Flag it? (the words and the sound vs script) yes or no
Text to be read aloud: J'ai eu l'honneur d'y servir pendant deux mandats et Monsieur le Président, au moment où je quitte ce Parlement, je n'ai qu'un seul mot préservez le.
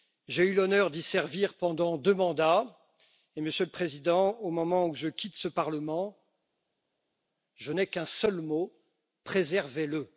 no